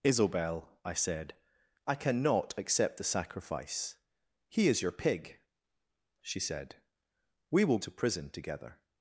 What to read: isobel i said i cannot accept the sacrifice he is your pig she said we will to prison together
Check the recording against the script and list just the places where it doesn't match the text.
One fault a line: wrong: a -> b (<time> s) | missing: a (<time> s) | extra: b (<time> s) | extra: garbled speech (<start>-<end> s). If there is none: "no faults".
no faults